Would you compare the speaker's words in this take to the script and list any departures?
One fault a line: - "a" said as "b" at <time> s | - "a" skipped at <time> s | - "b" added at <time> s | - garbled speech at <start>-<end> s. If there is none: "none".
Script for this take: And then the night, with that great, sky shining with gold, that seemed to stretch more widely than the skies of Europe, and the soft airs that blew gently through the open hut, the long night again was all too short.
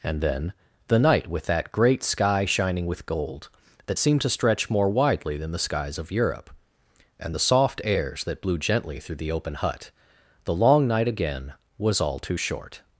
none